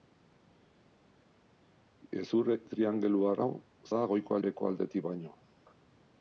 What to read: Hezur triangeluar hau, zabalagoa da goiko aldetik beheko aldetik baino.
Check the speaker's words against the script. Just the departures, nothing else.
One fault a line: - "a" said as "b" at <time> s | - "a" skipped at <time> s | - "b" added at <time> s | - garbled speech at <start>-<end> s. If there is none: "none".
- "zabalagoa" skipped at 3.5 s
- "aldetik" skipped at 4.4 s